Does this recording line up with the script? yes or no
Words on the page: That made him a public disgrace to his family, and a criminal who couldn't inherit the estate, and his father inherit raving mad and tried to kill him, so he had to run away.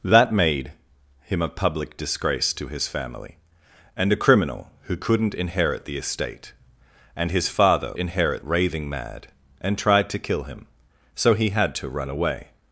yes